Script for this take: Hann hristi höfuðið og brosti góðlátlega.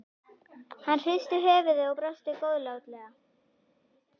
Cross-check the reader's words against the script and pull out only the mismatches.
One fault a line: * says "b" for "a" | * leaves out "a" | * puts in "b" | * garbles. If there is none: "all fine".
all fine